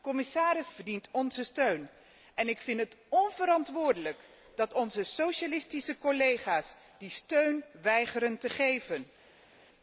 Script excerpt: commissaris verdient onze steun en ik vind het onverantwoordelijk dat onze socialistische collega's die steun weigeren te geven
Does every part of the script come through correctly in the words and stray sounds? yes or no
yes